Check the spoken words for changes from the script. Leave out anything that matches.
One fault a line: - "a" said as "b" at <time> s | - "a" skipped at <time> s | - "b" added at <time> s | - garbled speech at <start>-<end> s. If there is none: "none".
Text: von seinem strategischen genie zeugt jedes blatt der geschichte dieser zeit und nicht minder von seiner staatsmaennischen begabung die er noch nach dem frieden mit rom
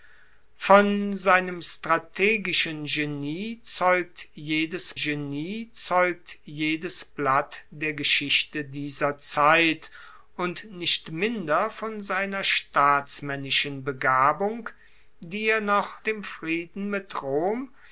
- "genie zeugt jedes" added at 4.9 s
- "nach" skipped at 16.0 s